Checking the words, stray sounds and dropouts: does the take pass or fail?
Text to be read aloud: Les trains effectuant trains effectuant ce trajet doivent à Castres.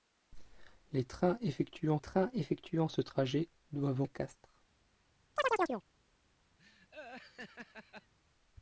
fail